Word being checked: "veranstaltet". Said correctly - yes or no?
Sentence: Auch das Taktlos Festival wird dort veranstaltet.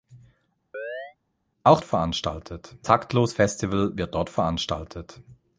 yes